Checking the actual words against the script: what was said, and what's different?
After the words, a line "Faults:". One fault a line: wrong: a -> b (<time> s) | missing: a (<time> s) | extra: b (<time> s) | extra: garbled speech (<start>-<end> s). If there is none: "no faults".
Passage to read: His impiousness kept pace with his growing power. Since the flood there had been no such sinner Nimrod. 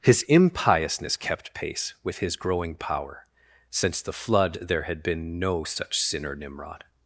His impiousness kept pace with his growing power. Since the flood there had been no such sinner Nimrod.
Faults:
no faults